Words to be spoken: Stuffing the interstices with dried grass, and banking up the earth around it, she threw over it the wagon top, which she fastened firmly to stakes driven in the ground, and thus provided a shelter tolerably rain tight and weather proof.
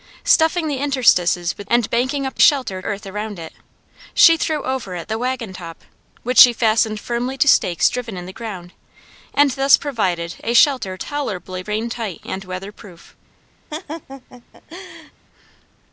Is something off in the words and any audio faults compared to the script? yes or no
yes